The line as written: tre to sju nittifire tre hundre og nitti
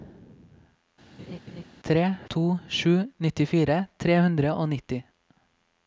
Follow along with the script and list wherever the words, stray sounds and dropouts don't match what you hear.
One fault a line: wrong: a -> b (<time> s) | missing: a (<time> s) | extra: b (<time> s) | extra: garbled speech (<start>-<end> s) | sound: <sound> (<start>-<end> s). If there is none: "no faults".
sound: laugh (1.2-1.6 s)